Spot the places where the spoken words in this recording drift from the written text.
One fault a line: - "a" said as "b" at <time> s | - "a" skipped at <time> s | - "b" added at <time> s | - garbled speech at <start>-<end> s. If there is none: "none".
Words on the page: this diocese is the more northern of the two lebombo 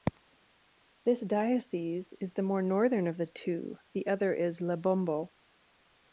- "the other is" added at 3.9 s